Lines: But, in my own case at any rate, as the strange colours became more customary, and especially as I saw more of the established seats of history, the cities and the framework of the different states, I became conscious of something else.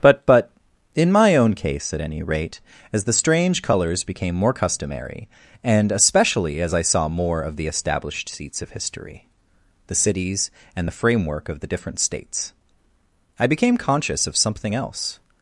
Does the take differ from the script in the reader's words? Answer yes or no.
yes